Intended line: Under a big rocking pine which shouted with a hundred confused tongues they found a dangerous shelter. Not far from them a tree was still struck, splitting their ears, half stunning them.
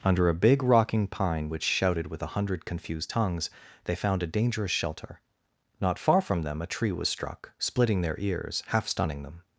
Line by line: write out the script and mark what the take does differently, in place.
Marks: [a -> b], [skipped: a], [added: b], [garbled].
Under a big rocking pine which shouted with a hundred confused tongues they found a dangerous shelter. Not far from them a tree was [skipped: still] struck, splitting their ears, half stunning them.